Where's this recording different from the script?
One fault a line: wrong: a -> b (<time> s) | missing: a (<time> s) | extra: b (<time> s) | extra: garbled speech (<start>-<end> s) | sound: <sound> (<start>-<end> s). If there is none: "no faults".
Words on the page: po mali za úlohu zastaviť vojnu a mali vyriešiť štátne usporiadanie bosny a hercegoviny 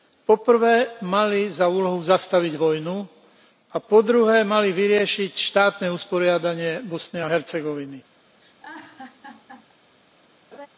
extra: prvé (0.4 s)
extra: po druhé (3.8 s)
sound: laugh (8.4-9.7 s)
sound: laugh (10.5-10.7 s)